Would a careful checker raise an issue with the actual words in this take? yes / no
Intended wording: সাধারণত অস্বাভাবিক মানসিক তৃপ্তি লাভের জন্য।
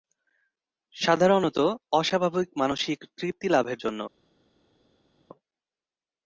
no